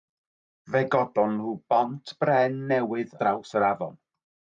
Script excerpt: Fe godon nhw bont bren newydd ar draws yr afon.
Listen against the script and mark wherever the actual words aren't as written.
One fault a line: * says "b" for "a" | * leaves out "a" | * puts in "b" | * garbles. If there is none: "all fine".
* leaves out "ar"